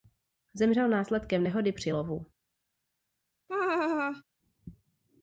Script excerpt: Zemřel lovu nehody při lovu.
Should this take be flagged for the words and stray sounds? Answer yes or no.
yes